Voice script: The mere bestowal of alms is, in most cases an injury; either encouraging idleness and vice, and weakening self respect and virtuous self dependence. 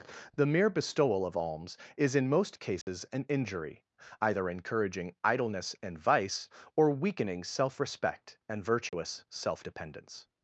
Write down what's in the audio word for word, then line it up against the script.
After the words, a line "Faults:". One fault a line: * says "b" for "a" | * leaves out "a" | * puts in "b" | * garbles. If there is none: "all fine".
The mere bestowal of alms is, in most cases an injury; either encouraging idleness and vice, or weakening self respect and virtuous self dependence.
Faults:
* says "or" for "and"